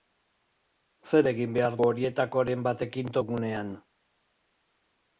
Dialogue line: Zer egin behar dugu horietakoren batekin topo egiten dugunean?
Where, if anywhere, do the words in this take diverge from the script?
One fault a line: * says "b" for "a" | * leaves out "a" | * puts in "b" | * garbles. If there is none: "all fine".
* leaves out "dugu"
* leaves out "topo egiten"